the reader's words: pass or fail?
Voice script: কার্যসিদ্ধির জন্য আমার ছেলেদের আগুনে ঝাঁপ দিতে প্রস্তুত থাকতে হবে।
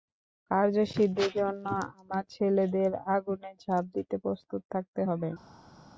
pass